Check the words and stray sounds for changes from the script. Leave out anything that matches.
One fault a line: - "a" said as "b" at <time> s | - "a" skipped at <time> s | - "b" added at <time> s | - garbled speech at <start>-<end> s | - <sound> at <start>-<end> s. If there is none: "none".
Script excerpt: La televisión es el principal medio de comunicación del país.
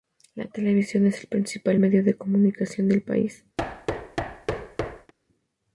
- thud at 3.6-5.1 s